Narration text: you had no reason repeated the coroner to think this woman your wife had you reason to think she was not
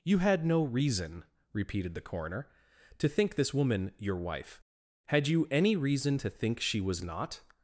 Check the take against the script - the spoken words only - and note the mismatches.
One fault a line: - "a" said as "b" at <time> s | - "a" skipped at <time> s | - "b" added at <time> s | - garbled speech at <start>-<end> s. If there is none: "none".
- "any" added at 5.5 s